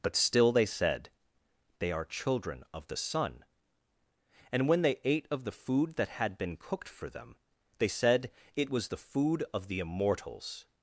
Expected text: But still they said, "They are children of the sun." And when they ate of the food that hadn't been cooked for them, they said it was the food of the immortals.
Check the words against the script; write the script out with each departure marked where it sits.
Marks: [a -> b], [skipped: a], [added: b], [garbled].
But still they said, "They are children of the sun." And when they ate of the food that [hadn't -> had] been cooked for them, they said it was the food of the immortals.